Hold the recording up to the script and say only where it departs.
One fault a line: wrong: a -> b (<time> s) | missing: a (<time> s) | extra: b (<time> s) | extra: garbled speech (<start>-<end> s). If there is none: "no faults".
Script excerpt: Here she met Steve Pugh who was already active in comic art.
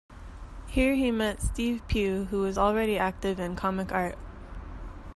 wrong: she -> he (0.9 s)